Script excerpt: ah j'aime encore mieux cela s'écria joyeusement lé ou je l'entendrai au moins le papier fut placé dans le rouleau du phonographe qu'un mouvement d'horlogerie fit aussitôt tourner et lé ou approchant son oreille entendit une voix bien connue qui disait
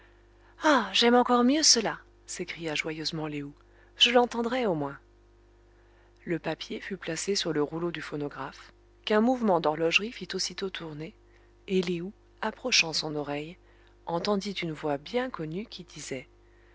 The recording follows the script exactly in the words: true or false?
false